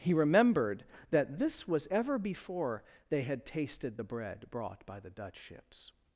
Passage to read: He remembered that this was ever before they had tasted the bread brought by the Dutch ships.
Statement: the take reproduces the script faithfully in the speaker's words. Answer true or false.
true